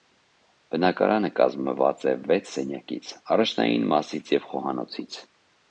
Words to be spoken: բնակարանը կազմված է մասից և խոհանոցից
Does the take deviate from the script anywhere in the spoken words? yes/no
yes